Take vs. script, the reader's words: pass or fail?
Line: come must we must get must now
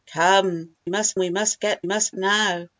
pass